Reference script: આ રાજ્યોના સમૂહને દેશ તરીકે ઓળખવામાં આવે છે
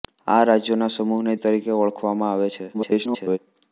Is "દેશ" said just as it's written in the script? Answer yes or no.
no